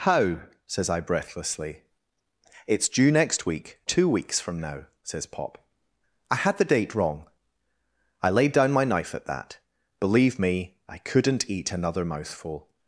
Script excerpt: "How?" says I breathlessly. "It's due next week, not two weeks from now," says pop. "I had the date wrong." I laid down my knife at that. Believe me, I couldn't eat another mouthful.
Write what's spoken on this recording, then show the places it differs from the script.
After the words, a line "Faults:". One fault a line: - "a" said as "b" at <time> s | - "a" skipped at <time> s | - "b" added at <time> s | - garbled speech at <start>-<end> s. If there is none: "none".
"How?" says I breathlessly. "It's due next week, two weeks from now," says pop. "I had the date wrong." I laid down my knife at that. Believe me, I couldn't eat another mouthful.
Faults:
- "not" skipped at 3.8 s